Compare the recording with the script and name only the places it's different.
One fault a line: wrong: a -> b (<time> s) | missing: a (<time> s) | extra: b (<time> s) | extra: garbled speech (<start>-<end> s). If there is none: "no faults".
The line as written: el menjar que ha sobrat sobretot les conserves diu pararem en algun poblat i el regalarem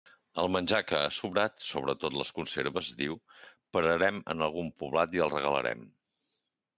no faults